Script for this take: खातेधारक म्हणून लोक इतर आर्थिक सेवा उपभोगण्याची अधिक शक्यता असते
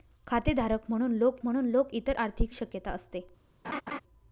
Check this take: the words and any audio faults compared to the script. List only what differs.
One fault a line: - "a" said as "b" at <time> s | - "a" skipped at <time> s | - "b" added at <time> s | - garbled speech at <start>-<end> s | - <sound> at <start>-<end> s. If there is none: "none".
- "म्हणून लोक" added at 1.4 s
- "सेवा उपभोगण्याची अधिक" skipped at 2.5 s
- laugh at 3.6-4.0 s